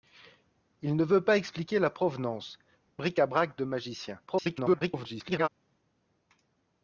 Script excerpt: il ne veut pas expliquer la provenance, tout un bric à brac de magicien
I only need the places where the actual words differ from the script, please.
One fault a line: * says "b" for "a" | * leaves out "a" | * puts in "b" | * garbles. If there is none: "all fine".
* leaves out "tout un"
* garbles